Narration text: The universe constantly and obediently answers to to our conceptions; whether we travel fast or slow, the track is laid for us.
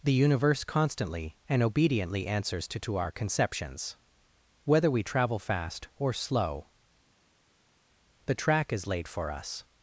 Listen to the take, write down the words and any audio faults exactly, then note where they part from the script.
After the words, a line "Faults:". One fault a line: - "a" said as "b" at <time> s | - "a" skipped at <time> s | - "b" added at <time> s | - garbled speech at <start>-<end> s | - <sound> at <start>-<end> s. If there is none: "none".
The universe constantly and obediently answers to to our conceptions; whether we travel fast or slow, the track is laid for us.
Faults:
none